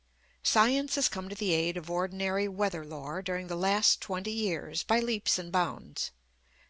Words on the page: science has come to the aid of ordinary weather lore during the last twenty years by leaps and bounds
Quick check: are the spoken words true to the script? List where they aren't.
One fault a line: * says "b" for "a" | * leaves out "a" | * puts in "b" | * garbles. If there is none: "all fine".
all fine